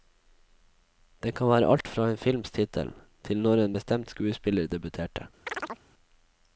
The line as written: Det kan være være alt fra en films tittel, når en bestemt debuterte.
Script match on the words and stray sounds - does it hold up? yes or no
no